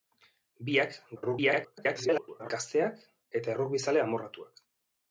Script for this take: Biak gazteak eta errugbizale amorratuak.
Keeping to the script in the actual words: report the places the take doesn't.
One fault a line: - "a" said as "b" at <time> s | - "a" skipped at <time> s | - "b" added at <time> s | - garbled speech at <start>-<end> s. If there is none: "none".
- garbled speech at 1.2-2.5 s